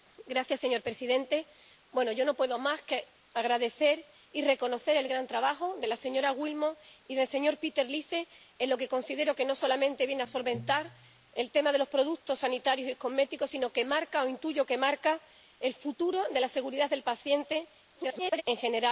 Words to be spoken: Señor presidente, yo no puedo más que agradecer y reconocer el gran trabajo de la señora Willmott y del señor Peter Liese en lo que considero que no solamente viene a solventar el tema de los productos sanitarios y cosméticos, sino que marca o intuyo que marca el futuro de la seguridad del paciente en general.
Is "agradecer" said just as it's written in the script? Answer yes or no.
yes